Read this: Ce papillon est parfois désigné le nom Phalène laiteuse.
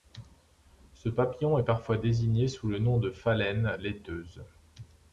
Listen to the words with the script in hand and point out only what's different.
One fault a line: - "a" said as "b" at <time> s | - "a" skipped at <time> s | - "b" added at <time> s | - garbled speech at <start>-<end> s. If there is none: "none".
- "sous" added at 2.5 s
- "de" added at 3.0 s